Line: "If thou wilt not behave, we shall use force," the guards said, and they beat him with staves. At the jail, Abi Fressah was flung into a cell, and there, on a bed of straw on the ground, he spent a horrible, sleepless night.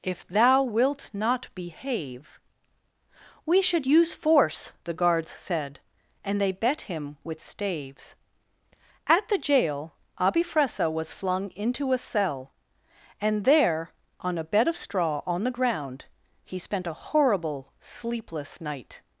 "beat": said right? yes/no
no